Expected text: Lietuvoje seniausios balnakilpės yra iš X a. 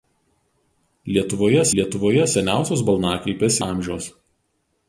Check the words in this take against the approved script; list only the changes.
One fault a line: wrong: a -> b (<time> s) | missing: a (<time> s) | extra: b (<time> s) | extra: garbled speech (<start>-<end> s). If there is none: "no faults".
extra: lietuvoje (1.8 s)
missing: yra iš X (3.6 s)